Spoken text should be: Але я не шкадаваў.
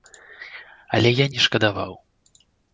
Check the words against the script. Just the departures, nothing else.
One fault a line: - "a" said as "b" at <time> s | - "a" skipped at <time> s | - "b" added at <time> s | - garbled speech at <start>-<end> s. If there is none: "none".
none